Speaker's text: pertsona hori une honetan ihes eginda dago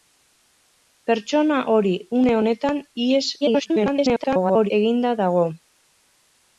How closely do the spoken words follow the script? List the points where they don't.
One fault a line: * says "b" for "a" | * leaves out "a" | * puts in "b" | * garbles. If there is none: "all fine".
* garbles